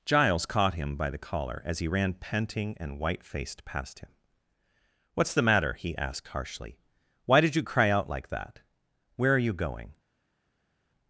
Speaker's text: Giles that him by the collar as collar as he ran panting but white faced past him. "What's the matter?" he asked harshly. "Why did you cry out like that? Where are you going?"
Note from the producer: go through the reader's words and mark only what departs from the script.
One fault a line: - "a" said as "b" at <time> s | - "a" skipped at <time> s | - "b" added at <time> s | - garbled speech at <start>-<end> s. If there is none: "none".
- "that" said as "caught" at 0.5 s
- "collar as" skipped at 1.8 s
- "but" said as "and" at 2.8 s